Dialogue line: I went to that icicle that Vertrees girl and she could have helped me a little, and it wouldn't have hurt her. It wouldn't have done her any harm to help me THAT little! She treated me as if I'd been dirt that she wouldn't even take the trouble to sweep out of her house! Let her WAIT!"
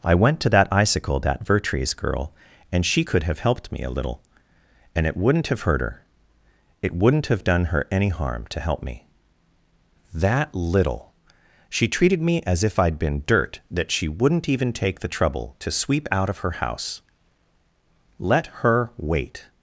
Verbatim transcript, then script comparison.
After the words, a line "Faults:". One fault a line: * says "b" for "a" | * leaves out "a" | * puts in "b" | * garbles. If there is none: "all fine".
I went to that icicle that Vertrees girl and she could have helped me a little, and it wouldn't have hurt her. It wouldn't have done her any harm to help me THAT little! She treated me as if I'd been dirt that she wouldn't even take the trouble to sweep out of her house! Let her WAIT!"
Faults:
all fine